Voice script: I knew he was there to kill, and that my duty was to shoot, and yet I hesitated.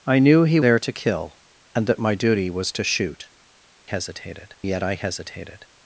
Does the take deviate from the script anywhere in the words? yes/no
yes